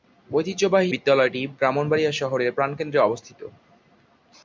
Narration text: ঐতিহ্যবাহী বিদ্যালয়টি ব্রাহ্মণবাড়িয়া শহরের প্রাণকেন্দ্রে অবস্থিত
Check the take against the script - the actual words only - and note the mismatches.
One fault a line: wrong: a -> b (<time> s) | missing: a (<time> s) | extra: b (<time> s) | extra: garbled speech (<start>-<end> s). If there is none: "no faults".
no faults